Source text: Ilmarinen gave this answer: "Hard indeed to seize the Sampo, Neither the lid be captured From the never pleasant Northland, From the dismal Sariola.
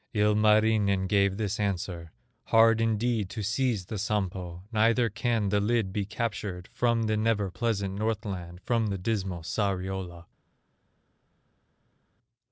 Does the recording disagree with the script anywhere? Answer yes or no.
yes